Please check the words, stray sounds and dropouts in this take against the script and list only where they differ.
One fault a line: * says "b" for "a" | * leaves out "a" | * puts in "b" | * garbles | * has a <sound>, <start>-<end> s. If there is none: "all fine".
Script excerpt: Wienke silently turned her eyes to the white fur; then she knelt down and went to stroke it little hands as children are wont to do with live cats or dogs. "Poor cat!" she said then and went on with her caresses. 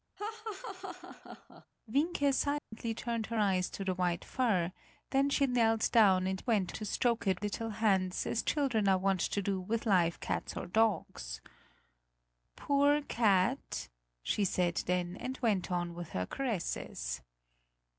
* has a laugh, 0.2-1.7 s
* has a dropout, 2.6-2.7 s